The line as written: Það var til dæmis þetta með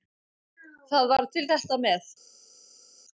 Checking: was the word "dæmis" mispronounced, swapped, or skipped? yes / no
yes